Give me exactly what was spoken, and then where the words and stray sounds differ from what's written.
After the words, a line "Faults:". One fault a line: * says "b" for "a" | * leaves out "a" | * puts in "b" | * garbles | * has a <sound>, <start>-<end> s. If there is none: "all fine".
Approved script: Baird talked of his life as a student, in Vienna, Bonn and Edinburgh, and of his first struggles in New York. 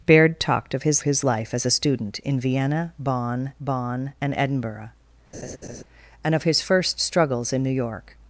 Baird talked of his his life as a student, in Vienna, Bonn Bonn and Edinburgh, and of his first struggles in New York.
Faults:
* puts in "his"
* puts in "Bonn"
* has a laugh, 5.3-5.8 s